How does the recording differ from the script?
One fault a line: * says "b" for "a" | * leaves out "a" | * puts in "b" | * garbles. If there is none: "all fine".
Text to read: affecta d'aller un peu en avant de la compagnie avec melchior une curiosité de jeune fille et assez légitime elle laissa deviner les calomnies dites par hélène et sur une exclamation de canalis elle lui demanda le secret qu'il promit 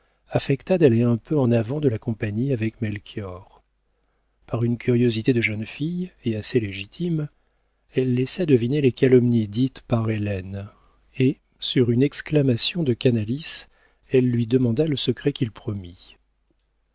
* puts in "par"